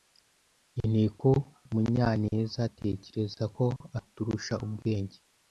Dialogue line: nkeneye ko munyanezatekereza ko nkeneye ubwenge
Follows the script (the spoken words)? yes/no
no